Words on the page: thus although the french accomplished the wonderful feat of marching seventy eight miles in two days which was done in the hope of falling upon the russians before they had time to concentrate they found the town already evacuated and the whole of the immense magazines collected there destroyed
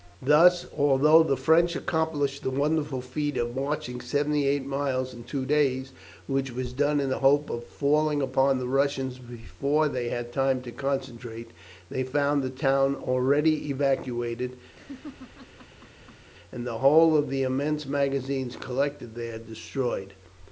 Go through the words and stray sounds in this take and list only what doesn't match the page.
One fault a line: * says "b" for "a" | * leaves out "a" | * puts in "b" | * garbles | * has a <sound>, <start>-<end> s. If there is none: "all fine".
* has a laugh, 14.7-16.3 s